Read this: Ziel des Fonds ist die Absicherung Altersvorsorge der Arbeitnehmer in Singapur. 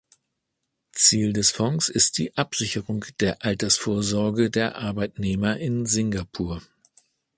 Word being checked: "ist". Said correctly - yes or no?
yes